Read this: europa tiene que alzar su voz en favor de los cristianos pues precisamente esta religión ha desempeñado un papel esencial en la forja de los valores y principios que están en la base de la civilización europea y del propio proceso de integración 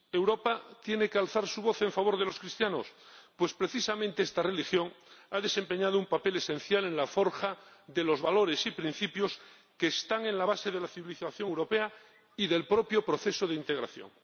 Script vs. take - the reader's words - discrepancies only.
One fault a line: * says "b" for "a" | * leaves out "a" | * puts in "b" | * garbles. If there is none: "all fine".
all fine